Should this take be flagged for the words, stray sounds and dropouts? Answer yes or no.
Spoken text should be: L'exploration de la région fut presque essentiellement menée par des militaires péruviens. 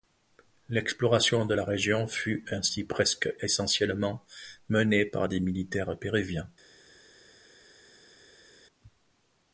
yes